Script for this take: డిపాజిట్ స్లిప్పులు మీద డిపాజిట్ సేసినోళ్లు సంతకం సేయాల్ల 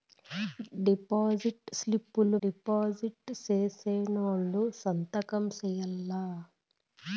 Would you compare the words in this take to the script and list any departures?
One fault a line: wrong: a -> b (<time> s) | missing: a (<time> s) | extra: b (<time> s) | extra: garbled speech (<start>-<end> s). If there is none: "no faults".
missing: మీద (2.4 s)